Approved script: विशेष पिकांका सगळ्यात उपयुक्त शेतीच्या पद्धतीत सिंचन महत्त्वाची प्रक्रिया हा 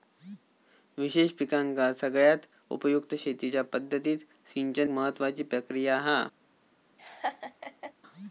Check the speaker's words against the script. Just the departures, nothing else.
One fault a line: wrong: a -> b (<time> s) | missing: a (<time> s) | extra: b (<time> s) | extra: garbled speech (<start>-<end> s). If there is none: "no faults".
no faults